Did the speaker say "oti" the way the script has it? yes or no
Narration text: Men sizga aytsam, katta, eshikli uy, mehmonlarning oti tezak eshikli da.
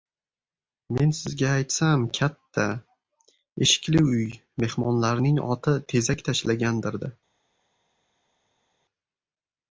yes